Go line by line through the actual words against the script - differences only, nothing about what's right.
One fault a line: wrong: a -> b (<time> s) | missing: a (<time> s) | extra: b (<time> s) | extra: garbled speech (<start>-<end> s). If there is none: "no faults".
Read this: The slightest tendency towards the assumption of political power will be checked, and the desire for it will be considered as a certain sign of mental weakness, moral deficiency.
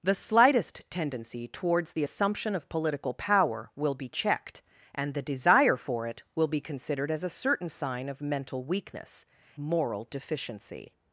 no faults